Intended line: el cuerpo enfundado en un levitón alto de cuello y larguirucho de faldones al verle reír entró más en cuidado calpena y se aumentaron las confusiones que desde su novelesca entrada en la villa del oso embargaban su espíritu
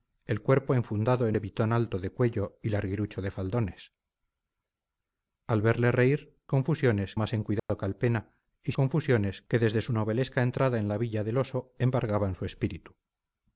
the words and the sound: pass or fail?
fail